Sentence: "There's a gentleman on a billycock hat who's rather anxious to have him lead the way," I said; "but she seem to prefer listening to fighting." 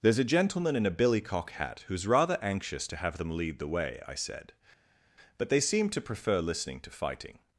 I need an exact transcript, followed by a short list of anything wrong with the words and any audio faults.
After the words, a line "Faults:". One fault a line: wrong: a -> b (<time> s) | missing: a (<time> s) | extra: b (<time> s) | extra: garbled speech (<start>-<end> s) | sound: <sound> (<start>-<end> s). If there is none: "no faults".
"There's a gentleman in a billycock hat who's rather anxious to have them lead the way," I said; "but they seem to prefer listening to fighting."
Faults:
wrong: on -> in (0.8 s)
wrong: him -> them (3.2 s)
wrong: she -> they (5.5 s)